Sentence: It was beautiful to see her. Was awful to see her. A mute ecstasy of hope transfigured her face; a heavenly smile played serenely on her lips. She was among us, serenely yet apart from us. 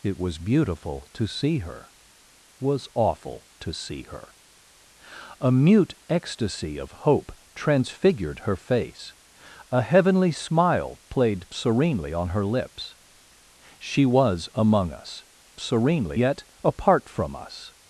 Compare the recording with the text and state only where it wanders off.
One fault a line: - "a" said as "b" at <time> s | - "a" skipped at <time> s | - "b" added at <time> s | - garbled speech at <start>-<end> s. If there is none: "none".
none